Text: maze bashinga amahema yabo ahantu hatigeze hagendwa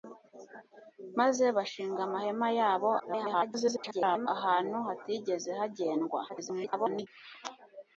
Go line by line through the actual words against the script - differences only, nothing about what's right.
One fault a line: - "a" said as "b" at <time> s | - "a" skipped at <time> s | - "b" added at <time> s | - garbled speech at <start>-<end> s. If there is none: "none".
- garbled speech at 3.0-4.3 s
- garbled speech at 6.3-7.1 s